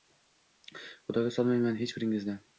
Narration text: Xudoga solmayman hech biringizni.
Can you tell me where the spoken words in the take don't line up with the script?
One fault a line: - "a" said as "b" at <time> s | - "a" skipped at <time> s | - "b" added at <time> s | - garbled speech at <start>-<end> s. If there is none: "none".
none